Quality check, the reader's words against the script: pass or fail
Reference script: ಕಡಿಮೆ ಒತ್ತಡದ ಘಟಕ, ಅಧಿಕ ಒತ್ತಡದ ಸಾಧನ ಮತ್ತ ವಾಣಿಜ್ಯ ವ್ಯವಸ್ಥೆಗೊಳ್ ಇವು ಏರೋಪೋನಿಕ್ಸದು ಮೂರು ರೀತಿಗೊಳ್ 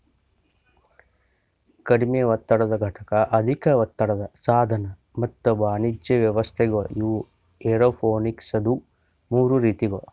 pass